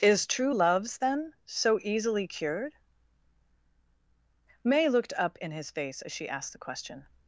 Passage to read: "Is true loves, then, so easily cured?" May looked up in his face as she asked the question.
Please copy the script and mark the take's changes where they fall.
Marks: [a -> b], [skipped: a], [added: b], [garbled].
"Is true loves, then, so easily cured?" May looked up in his face as she asked the question.